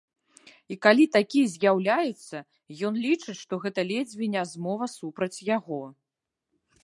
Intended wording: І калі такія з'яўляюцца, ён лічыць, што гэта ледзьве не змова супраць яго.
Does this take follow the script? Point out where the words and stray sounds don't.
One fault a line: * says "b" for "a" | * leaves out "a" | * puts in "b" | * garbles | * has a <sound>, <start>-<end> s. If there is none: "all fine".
all fine